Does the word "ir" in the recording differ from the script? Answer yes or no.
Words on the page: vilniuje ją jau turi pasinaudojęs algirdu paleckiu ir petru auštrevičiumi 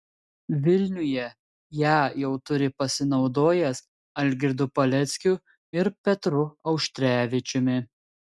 no